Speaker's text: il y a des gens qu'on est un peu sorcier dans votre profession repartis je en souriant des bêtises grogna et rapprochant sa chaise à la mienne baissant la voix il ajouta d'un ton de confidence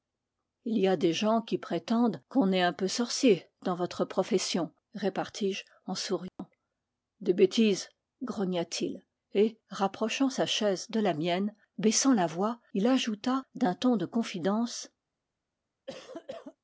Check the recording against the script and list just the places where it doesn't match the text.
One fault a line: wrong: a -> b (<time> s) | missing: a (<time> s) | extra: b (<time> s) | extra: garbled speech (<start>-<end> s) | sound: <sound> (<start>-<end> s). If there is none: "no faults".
extra: qui prétendent (1.4 s)
sound: dropout (6.3-6.4 s)
extra: t il (8.6 s)
wrong: à -> de (10.9 s)
sound: cough (15.9-16.6 s)